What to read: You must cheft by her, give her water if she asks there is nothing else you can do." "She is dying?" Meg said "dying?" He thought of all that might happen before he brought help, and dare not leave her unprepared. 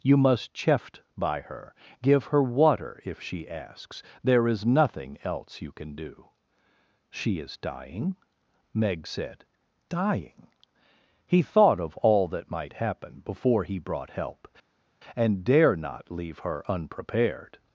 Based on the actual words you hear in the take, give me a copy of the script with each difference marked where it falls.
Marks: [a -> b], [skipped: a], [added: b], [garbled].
You must cheft by her, give her water if she asks there is nothing else you can do." "She is dying?" Meg said "dying?" He thought of all that might happen before he brought help, and dare not leave her unprepared.